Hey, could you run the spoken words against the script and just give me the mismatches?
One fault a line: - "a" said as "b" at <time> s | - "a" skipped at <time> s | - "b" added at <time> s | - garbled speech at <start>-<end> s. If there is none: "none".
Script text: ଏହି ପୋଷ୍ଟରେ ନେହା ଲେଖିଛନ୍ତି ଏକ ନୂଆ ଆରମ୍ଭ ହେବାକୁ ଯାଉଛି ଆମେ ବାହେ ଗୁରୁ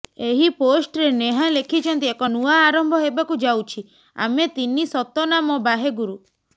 - "ତିନି ସତନାମ" added at 4.5 s